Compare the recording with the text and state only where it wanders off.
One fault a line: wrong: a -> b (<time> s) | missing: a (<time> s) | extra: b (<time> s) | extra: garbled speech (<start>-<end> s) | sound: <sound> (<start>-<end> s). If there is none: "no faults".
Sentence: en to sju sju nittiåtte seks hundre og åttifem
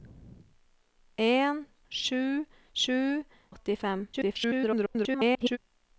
missing: to (1.6 s)
missing: nittiåtte seks hundre (3.0 s)
extra: garbled speech (4.1-5.6 s)